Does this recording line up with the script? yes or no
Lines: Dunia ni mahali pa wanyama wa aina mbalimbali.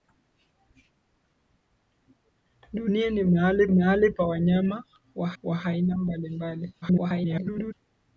no